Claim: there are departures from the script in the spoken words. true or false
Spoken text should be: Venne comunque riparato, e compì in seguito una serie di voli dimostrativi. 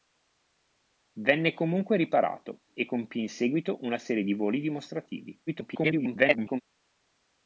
true